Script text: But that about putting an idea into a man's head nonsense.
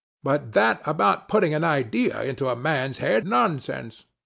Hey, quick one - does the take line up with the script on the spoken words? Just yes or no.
yes